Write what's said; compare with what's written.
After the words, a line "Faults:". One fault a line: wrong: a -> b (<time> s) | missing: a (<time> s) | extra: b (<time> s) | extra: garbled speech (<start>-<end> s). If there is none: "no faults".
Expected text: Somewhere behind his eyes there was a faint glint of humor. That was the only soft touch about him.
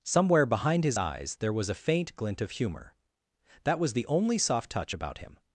Somewhere behind his eyes there was a faint glint of humor. That was the only soft touch about him.
Faults:
no faults